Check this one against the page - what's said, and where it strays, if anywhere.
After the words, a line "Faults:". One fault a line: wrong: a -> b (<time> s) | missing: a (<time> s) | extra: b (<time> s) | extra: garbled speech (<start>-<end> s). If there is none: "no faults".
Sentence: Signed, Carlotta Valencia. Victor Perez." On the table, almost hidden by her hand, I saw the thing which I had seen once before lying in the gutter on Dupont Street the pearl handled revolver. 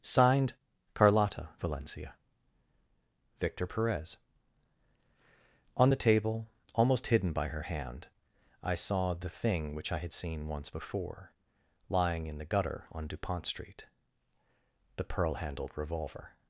Signed, Carlotta Valencia. Victor Perez." On the table, almost hidden by her hand, I saw the thing which I had seen once before lying in the gutter on Dupont Street the pearl handled revolver.
Faults:
no faults